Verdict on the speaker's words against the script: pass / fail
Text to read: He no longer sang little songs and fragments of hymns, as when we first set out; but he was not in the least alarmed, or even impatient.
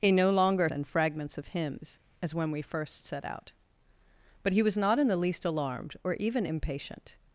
fail